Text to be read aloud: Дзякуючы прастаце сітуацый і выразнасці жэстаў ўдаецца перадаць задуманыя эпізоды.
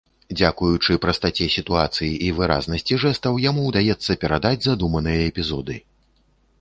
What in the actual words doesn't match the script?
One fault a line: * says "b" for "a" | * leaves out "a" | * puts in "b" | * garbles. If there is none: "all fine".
* puts in "яму"